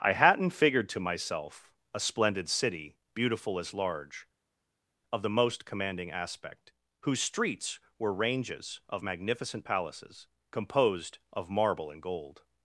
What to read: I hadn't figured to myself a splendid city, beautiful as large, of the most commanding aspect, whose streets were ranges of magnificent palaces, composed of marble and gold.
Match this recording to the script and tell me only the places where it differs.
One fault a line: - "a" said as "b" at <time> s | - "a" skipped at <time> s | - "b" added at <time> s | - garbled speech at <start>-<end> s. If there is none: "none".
none